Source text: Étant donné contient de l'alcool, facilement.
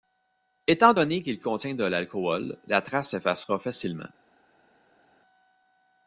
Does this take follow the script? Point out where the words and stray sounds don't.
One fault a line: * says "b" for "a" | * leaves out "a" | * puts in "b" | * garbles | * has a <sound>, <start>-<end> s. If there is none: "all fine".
* puts in "qu'il"
* puts in "la trace s'effacera"